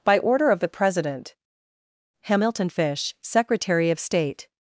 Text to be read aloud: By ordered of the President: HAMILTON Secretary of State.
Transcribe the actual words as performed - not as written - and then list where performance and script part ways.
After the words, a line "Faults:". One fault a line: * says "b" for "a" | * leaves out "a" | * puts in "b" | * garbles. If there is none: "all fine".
By order of the President: HAMILTON FISH, Secretary of State.
Faults:
* says "order" for "ordered"
* puts in "FISH"